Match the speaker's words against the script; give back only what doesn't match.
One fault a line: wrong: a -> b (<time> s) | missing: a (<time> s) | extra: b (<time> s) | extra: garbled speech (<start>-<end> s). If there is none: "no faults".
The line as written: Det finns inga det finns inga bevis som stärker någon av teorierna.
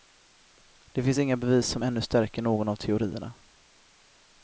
missing: det finns inga (1.4 s)
extra: ännu (1.8 s)